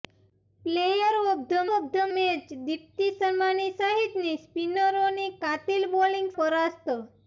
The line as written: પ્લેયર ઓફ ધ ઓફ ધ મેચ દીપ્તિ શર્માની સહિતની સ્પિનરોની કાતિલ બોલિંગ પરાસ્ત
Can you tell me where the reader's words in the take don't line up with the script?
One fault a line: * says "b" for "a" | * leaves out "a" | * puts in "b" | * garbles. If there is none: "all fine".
all fine